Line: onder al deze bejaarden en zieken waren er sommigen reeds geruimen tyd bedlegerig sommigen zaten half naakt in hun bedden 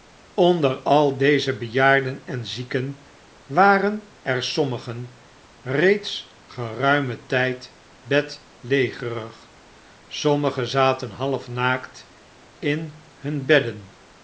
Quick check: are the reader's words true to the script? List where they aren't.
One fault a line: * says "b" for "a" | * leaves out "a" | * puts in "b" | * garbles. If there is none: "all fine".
all fine